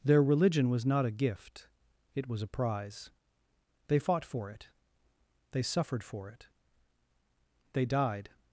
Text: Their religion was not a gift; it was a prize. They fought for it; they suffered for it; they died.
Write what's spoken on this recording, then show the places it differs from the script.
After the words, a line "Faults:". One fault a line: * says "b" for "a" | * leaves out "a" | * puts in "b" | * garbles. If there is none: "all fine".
Their religion was not a gift; it was a prize. They fought for it; they suffered for it; they died.
Faults:
all fine